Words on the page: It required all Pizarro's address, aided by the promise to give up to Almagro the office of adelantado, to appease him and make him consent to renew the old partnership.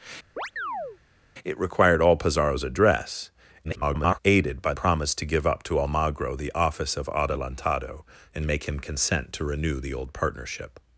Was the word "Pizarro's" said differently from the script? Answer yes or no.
no